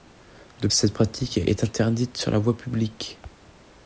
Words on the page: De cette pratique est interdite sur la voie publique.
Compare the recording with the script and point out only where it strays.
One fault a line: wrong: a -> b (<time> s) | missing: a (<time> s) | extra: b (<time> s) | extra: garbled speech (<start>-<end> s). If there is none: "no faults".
no faults